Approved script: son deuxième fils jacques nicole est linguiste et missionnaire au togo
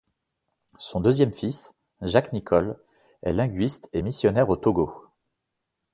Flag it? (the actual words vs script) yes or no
no